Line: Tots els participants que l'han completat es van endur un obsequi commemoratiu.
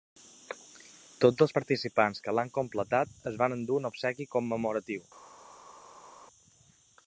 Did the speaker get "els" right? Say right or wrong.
right